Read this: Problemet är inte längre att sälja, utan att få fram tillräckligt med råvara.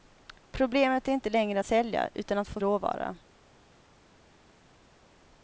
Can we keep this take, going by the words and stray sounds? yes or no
no